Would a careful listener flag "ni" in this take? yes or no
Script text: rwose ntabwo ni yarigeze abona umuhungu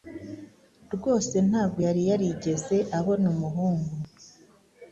yes